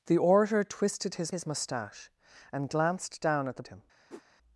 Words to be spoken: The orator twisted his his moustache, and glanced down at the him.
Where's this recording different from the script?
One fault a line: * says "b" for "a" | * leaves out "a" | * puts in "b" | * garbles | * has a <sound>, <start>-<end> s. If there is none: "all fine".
* has a whoosh, 4.1-4.2 s